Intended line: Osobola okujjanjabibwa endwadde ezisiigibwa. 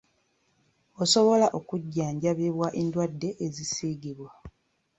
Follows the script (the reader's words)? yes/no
yes